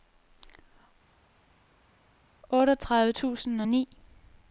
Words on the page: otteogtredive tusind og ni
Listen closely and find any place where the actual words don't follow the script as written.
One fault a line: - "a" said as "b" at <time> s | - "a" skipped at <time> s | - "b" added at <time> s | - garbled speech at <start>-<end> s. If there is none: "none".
none